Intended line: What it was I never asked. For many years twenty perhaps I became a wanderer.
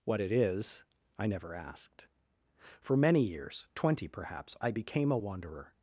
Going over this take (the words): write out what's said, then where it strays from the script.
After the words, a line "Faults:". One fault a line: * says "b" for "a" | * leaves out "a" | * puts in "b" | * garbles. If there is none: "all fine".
What it is I never asked. For many years twenty perhaps I became a wanderer.
Faults:
* says "is" for "was"